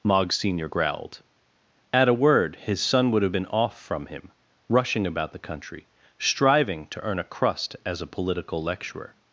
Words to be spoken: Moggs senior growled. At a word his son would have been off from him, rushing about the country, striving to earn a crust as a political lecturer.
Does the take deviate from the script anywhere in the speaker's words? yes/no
no